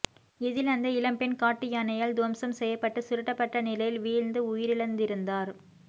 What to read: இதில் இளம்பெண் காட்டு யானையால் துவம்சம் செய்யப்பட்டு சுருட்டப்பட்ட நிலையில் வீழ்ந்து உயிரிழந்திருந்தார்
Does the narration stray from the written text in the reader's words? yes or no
yes